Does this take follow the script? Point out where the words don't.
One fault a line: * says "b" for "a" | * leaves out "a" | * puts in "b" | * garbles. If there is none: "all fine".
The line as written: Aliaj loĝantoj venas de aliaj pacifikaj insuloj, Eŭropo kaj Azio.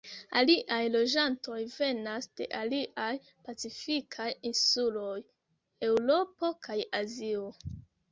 all fine